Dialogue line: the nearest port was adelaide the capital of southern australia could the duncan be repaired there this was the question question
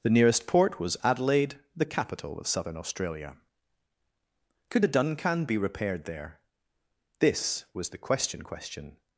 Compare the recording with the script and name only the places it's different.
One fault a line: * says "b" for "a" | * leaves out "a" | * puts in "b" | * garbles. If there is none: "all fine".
all fine